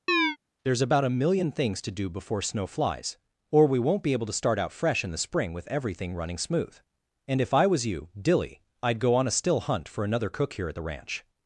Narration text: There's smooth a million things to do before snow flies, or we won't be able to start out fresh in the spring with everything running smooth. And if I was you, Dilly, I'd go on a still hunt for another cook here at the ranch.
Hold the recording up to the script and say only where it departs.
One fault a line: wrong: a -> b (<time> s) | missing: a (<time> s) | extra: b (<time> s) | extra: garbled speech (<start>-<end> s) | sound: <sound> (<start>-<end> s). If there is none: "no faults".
sound: chirp (0.1-0.4 s)
wrong: smooth -> about (0.8 s)